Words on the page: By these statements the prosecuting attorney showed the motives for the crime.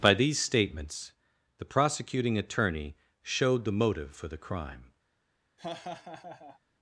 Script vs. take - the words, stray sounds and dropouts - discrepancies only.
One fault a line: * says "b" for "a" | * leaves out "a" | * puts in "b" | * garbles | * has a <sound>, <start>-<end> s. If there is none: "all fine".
* says "motive" for "motives"
* has a laugh, 5.6-6.6 s